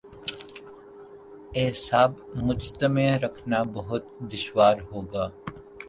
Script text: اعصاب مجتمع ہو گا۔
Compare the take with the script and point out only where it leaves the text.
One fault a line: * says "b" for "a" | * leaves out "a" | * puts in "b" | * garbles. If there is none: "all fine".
* puts in "رکھنا بہت دشوار"